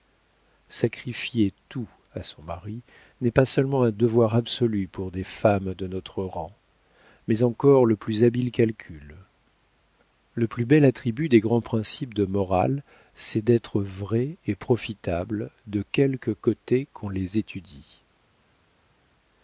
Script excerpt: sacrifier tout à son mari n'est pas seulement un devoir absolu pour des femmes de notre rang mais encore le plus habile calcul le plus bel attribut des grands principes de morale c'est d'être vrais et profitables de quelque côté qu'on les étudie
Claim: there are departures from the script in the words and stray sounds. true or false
false